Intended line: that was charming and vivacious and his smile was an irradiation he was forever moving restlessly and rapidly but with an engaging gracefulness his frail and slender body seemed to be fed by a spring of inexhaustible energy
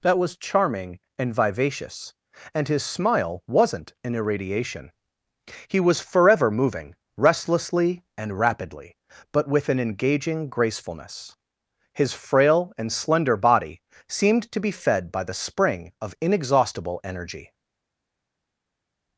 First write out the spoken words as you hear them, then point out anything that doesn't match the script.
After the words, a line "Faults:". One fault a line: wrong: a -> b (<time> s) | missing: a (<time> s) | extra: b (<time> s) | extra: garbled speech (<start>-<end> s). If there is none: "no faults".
that was charming and vivacious and his smile wasn't an irradiation he was forever moving restlessly and rapidly but with an engaging gracefulness his frail and slender body seemed to be fed by the spring of inexhaustible energy
Faults:
wrong: was -> wasn't (3.5 s)
wrong: a -> the (15.2 s)